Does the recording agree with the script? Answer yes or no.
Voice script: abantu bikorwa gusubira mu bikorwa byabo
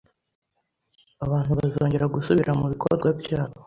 no